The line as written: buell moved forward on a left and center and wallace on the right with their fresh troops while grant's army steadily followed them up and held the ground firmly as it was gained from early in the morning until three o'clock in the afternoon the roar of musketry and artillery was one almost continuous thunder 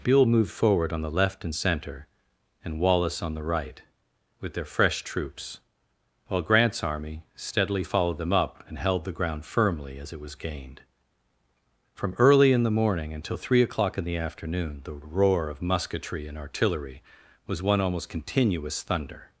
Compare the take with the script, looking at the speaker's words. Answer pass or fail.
fail